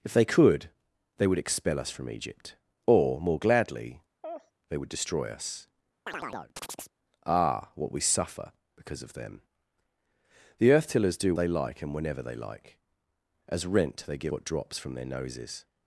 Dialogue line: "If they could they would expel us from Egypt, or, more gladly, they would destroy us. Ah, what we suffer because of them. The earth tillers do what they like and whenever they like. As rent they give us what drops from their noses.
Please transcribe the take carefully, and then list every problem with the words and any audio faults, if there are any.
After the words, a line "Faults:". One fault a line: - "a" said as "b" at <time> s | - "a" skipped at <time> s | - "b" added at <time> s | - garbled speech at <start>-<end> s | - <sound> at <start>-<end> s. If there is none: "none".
"If they could they would expel us from Egypt, or, more gladly, they would destroy us. Ah, what we suffer because of them. The earth tillers do they like and whenever they like. As rent they give what drops from their noses.
Faults:
- laugh at 4.2-4.5 s
- chirp at 6.1-6.9 s
- "what" skipped at 11.3 s
- "us" skipped at 14.3 s